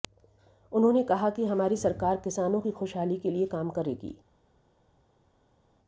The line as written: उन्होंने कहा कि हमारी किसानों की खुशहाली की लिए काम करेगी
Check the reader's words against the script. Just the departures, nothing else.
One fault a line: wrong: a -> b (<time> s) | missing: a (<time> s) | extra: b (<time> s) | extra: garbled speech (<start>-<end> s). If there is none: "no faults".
extra: सरकार (1.8 s)
wrong: की -> के (3.2 s)